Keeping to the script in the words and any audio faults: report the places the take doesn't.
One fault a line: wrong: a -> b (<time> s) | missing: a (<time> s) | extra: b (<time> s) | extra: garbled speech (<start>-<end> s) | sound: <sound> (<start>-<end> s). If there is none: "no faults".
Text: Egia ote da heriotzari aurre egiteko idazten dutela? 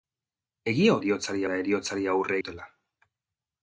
wrong: ote -> heriotzari (1.0 s)
missing: egiteko idazten (2.4 s)